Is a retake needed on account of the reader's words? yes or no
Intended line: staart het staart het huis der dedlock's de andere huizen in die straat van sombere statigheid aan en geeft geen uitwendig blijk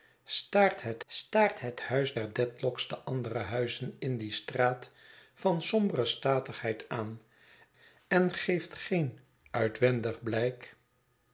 no